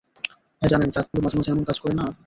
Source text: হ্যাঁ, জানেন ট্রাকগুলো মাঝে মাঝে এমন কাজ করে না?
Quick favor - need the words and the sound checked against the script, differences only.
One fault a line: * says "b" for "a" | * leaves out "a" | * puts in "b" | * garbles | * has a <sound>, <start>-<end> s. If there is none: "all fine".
* has a dropout, 1.1-1.1 s